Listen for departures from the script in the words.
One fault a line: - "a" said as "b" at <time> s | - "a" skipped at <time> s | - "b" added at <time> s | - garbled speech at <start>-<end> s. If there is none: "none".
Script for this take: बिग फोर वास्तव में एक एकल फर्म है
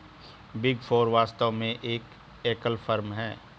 none